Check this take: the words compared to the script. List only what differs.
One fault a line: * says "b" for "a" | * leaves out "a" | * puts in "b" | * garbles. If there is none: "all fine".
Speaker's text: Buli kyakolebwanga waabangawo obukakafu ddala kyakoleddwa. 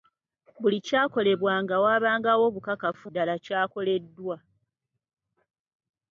all fine